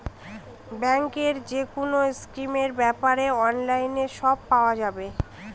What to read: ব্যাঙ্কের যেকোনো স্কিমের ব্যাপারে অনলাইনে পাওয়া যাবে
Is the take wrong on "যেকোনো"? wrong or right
right